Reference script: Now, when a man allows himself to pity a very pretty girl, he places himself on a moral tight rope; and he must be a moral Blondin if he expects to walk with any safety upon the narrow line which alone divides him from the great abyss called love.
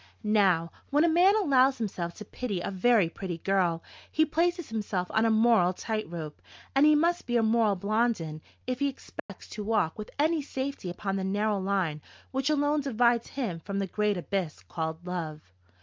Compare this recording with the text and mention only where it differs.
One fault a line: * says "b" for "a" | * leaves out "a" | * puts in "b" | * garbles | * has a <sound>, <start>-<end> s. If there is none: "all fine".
* has a dropout, 9.2-9.3 s